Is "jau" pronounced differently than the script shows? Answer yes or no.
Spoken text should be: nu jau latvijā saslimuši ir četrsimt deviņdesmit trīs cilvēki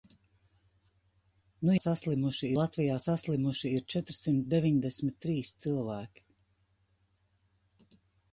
yes